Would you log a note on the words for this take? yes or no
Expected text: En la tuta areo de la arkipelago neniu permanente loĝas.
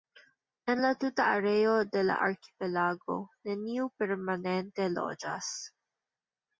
no